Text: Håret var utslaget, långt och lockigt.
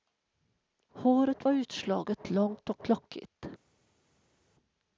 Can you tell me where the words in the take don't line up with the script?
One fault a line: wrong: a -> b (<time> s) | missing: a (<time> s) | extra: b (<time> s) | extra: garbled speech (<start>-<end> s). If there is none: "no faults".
no faults